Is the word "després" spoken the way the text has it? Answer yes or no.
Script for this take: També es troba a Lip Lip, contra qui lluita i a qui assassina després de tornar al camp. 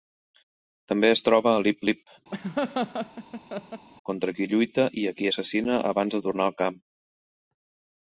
no